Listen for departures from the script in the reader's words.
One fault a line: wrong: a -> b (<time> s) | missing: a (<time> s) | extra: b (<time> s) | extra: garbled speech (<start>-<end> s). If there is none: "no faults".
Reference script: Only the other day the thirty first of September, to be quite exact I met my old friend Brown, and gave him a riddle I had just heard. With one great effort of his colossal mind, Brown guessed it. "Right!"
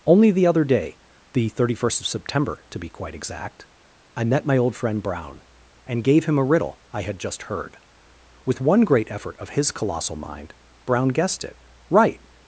no faults